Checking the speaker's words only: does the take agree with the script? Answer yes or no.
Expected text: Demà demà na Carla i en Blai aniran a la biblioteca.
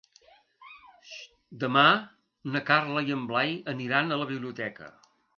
no